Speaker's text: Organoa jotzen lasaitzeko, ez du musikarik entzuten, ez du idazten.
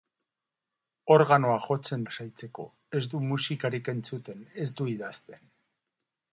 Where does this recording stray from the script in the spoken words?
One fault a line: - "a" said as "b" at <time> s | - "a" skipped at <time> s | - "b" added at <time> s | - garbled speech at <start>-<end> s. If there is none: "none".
none